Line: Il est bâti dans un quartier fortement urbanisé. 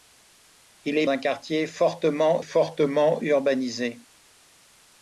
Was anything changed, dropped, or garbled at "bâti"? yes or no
yes